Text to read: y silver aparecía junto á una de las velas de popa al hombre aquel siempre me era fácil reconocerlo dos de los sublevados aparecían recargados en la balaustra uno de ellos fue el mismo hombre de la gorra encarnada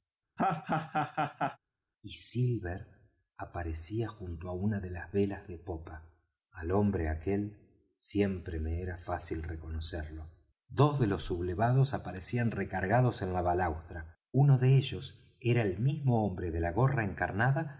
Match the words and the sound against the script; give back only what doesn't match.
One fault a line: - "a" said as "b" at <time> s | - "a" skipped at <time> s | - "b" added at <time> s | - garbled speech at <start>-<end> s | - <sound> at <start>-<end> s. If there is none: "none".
- laugh at 0.4-1.6 s
- "fue" said as "era" at 15.4 s